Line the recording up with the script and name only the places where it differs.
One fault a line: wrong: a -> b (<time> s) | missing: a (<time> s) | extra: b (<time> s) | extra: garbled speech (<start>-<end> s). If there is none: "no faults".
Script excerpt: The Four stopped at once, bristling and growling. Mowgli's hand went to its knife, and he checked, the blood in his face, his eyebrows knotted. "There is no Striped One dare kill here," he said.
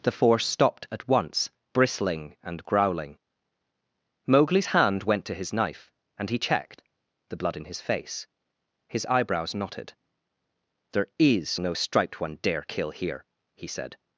wrong: its -> his (5.3 s)